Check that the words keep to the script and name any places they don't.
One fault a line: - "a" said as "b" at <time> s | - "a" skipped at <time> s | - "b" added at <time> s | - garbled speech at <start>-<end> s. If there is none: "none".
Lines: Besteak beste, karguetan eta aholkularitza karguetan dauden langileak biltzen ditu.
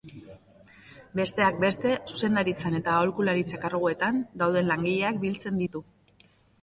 - "karguetan" said as "zuzendaritzan" at 2.1 s